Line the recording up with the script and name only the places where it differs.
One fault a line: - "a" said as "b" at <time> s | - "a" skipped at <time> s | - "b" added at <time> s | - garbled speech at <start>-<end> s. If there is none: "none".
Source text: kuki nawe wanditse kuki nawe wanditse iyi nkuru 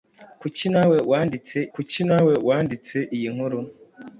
none